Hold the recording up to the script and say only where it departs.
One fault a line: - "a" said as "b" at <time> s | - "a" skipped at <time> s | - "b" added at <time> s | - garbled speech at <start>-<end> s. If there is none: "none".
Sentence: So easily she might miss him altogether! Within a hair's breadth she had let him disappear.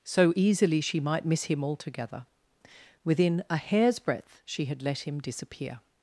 none